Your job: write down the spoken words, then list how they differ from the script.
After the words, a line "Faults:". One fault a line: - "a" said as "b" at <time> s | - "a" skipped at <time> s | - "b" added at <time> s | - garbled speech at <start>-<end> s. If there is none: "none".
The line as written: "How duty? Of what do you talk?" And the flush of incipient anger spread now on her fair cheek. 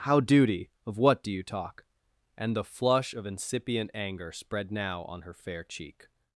"How duty? Of what do you talk?" And the flush of incipient anger spread now on her fair cheek.
Faults:
none